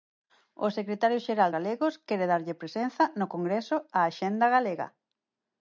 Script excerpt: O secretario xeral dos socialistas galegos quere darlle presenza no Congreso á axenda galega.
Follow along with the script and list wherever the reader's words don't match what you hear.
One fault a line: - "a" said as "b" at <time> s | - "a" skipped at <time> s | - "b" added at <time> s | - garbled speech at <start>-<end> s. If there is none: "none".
- "dos socialistas" skipped at 1.5 s